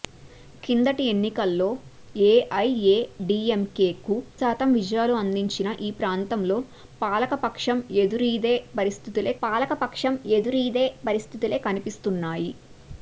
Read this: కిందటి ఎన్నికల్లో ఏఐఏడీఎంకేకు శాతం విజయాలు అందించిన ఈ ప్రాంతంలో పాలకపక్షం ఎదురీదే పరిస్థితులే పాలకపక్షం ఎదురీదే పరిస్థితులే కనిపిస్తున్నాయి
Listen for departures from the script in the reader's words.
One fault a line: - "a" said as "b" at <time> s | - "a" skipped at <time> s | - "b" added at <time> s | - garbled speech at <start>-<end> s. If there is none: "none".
none